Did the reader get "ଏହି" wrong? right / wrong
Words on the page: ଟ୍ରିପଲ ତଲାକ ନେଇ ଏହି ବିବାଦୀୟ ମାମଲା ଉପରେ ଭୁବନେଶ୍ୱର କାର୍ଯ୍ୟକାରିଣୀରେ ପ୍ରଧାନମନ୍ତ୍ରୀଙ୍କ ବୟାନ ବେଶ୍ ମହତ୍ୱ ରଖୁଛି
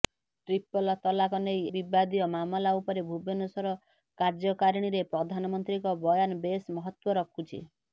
wrong